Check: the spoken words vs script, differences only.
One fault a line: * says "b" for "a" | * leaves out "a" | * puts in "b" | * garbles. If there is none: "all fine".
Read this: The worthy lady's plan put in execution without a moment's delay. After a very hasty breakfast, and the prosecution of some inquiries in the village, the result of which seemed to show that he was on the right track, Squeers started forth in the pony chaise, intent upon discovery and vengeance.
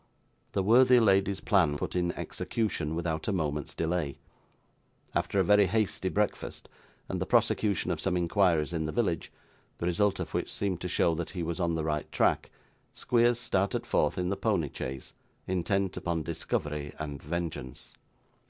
all fine